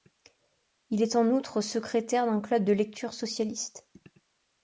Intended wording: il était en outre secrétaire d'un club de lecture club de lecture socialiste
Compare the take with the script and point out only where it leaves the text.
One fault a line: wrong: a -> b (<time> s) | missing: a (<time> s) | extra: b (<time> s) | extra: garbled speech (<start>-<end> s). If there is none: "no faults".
wrong: était -> est (1.0 s)
missing: club de lecture (3.1 s)